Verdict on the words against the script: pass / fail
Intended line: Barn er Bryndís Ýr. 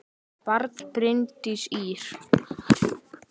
pass